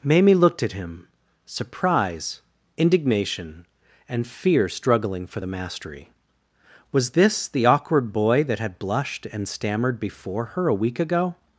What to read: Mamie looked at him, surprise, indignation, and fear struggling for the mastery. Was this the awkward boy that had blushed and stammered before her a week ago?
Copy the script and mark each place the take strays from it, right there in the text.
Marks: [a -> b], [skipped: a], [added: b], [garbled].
Mamie looked at him, surprise, indignation, and fear struggling for the mastery. Was this the awkward boy that had blushed and stammered before her a week ago?